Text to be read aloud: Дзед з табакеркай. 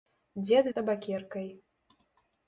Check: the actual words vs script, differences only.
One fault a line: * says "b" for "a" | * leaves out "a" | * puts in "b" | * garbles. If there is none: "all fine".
all fine